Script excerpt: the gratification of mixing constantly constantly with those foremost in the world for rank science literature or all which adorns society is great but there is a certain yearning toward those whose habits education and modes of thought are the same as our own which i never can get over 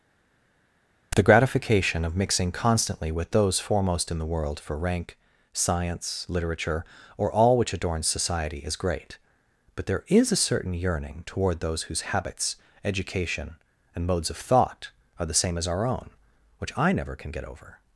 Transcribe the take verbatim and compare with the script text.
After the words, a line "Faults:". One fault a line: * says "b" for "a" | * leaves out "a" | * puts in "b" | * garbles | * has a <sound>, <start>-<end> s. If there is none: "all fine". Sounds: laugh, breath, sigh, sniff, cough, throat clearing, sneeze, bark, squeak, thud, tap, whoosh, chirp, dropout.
the gratification of mixing constantly with those foremost in the world for rank science literature or all which adorns society is great but there is a certain yearning toward those whose habits education and modes of thought are the same as our own which i never can get over
Faults:
* leaves out "constantly"